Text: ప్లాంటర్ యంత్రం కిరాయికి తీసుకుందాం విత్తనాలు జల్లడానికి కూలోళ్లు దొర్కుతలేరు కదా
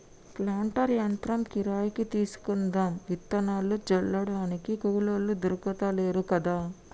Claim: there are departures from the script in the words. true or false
false